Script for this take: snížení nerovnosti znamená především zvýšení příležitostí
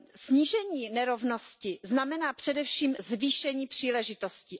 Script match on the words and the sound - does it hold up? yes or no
yes